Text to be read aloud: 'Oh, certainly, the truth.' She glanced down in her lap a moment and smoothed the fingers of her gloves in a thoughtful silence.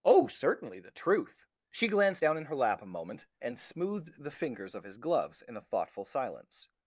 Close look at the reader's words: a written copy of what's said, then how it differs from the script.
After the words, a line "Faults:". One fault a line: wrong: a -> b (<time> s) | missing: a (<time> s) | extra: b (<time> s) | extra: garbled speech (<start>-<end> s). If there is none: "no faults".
'Oh, certainly, the truth.' She glanced down in her lap a moment and smoothed the fingers of his gloves in a thoughtful silence.
Faults:
wrong: her -> his (4.8 s)